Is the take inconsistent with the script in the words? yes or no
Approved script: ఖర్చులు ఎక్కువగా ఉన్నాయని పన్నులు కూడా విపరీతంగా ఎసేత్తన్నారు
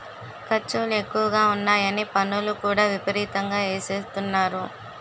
no